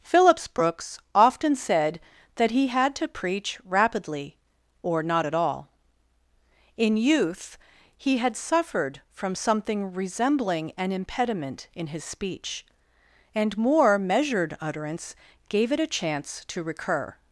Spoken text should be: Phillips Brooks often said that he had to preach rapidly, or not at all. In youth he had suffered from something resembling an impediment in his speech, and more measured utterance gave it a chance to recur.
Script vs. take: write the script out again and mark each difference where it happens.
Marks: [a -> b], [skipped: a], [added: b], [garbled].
Phillips Brooks often said that he had to preach rapidly, or not at all. In youth he had suffered from something resembling an impediment in his speech, and more measured utterance gave it a chance to recur.